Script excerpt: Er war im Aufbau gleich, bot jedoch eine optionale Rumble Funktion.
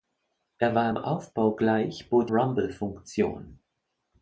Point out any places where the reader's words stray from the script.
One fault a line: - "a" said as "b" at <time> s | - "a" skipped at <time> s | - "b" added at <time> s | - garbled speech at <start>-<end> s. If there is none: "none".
- "jedoch eine optionale" skipped at 2.3 s